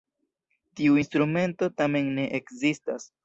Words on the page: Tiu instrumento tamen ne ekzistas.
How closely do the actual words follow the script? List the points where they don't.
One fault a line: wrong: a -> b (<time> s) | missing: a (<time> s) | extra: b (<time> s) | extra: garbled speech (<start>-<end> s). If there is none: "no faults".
no faults